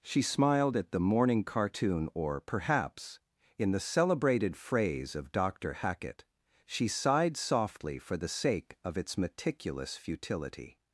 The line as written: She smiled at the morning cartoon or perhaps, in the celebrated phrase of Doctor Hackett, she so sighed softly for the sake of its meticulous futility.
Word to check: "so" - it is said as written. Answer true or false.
false